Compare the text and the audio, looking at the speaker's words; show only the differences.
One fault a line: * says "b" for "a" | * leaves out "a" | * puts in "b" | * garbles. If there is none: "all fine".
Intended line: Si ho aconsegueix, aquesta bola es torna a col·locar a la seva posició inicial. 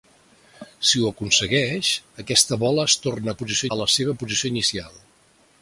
* says "posició" for "col·locar"